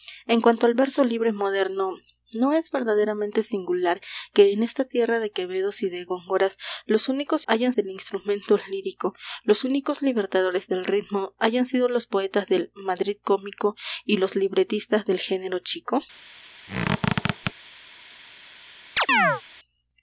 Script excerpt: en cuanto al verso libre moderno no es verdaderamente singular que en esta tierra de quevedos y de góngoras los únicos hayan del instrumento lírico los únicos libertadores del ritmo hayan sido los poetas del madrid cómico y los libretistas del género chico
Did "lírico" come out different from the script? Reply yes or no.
no